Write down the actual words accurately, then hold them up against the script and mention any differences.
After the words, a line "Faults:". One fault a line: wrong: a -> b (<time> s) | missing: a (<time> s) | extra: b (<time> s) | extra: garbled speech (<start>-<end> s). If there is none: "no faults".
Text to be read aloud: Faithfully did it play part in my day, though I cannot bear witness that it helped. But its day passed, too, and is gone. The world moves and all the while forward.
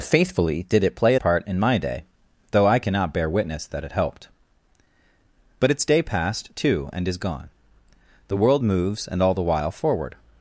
Faithfully did it play part in my day, though I cannot bear witness that it helped. But its day passed, too, and is gone. The world moves and all the while forward.
Faults:
no faults